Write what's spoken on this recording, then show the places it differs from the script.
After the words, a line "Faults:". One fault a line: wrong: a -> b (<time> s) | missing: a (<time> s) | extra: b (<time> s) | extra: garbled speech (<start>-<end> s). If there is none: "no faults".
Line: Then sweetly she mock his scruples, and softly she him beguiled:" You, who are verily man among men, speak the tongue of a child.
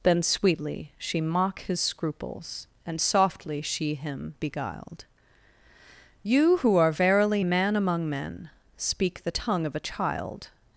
Then sweetly she mock his scruples, and softly she him beguiled:" You, who are verily man among men, speak the tongue of a child.
Faults:
no faults